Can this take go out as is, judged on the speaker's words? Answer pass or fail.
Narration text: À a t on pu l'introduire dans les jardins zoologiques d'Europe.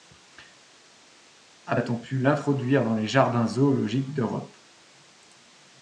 pass